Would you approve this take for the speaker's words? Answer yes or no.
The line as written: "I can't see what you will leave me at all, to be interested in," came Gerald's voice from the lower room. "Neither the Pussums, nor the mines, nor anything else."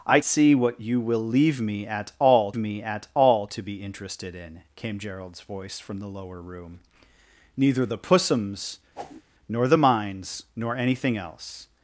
no